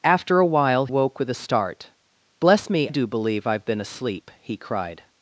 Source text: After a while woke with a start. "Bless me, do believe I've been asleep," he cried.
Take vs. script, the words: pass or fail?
pass